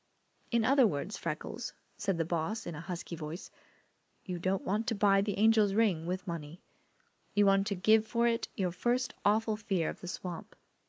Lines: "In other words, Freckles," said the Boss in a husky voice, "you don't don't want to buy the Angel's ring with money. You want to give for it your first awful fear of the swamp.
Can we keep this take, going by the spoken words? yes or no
no